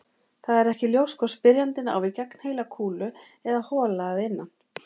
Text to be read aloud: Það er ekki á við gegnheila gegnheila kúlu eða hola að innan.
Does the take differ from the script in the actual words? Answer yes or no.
yes